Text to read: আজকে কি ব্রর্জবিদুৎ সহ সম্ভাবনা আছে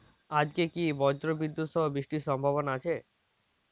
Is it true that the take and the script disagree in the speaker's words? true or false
true